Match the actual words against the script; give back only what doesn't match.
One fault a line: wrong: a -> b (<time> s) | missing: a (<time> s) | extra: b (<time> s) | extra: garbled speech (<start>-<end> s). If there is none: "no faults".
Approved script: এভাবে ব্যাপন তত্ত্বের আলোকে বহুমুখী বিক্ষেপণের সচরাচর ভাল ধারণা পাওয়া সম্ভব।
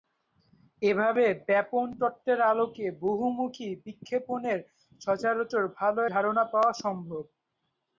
no faults